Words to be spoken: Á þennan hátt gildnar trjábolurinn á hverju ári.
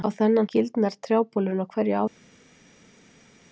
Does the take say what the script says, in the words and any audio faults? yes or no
no